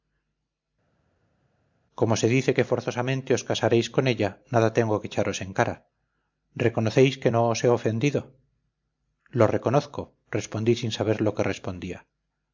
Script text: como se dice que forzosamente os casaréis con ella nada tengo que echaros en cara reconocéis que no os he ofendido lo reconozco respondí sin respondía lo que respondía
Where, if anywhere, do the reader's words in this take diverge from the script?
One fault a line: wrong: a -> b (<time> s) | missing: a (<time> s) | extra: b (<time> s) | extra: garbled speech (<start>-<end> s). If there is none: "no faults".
wrong: respondía -> saber (11.0 s)